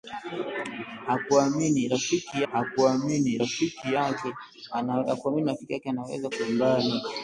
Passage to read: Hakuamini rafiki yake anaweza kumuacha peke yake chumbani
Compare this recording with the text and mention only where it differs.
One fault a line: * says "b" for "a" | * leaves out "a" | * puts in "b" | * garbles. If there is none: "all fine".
* puts in "hakuamini rafiki"
* leaves out "kumuacha peke yake"